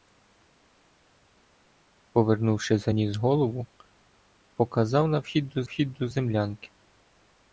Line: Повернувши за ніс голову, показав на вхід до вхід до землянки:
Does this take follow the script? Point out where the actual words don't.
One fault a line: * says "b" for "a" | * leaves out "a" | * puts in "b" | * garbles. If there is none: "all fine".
all fine